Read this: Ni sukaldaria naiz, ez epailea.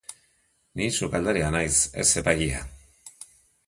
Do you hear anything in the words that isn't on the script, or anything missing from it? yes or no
no